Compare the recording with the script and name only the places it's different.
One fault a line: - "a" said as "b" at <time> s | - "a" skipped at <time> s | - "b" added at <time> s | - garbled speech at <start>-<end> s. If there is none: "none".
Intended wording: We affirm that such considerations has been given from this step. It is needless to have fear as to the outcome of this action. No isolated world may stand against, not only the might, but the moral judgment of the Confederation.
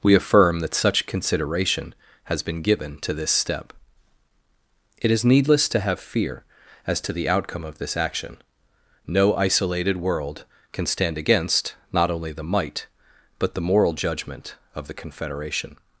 - "considerations" said as "consideration" at 1.1 s
- "from" said as "to" at 3.0 s
- "may" said as "can" at 10.7 s